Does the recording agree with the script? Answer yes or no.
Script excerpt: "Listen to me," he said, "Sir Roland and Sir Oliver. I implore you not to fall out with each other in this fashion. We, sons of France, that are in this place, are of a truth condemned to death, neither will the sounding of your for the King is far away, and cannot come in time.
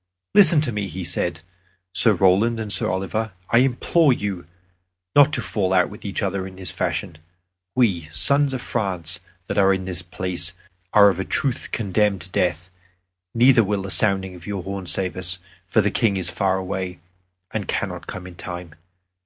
no